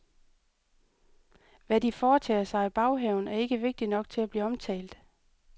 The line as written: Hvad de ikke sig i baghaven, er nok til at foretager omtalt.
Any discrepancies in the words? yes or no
yes